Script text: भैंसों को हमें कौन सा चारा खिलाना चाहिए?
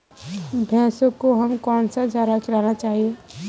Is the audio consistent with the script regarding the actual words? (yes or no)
yes